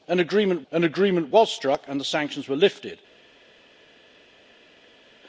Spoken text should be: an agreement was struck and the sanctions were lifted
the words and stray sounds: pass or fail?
fail